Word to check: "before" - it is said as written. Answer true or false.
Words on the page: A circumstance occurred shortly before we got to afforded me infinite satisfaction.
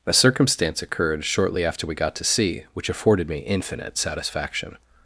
false